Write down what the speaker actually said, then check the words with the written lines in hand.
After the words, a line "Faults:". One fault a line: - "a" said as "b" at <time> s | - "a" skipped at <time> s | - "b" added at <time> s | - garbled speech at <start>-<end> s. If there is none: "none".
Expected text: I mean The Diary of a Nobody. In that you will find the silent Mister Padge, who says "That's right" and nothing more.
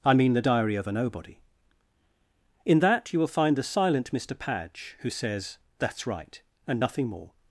I mean The Diary of a Nobody. In that you will find the silent Mister Padge, who says "That's right" and nothing more.
Faults:
none